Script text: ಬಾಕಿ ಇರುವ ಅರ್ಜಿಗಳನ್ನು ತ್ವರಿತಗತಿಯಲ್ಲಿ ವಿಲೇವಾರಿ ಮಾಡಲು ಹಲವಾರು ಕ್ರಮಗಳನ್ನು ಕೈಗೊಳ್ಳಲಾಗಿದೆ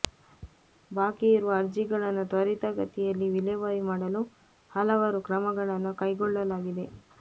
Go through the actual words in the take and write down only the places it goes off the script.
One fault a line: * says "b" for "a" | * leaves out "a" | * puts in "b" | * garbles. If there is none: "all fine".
all fine